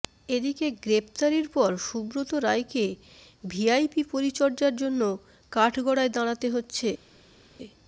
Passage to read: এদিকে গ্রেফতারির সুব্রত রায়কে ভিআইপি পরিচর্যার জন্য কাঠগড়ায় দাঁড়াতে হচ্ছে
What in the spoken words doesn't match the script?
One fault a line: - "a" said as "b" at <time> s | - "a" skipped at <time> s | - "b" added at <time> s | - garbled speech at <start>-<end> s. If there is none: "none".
- "পর" added at 1.5 s